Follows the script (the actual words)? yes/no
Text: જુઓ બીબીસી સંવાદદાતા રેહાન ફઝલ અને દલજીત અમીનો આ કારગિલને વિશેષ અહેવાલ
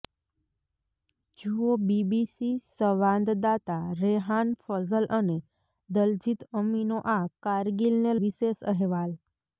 yes